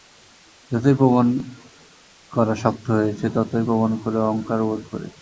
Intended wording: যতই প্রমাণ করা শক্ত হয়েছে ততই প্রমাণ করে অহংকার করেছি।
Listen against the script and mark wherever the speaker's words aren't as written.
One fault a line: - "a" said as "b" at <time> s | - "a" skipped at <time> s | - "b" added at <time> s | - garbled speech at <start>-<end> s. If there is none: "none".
- "বোধ" added at 4.7 s